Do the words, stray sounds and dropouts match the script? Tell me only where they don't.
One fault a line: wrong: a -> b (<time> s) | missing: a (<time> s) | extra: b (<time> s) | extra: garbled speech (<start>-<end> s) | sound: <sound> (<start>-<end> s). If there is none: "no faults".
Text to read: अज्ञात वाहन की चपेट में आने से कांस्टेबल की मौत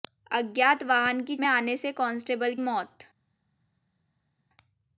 missing: चपेट (1.4 s)
missing: की (2.6 s)